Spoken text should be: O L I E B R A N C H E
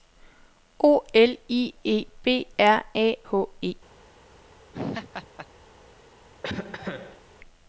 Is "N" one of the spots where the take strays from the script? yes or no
yes